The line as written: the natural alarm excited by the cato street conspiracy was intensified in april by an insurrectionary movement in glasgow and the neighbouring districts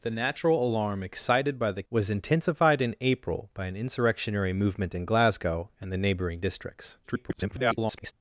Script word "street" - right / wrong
wrong